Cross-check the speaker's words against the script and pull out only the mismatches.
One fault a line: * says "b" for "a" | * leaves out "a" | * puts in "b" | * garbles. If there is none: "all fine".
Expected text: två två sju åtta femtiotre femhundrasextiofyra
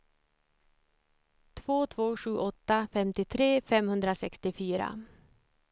all fine